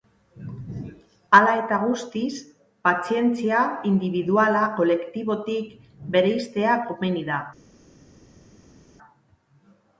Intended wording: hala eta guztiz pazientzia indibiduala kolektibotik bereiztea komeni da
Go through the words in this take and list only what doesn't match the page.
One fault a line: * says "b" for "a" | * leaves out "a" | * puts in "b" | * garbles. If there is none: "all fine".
all fine